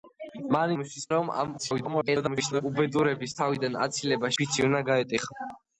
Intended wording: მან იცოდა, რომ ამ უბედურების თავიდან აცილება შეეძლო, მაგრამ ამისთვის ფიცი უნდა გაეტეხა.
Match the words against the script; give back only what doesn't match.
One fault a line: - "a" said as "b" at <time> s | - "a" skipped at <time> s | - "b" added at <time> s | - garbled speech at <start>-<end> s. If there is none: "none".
- "იცოდა" said as "ამისთვის" at 0.7 s
- garbled speech at 1.6-2.6 s
- "შეეძლო მაგრამ ამისთვის" skipped at 4.3 s